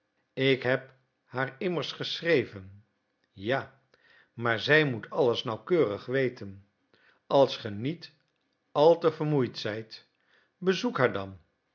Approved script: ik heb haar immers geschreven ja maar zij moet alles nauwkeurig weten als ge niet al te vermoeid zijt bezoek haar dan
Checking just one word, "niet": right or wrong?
right